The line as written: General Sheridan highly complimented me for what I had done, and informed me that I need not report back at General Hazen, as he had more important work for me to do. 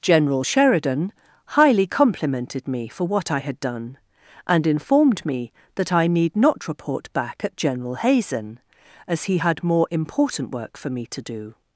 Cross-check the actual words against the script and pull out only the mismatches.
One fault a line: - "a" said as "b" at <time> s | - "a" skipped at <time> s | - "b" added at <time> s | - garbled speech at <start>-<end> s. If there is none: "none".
none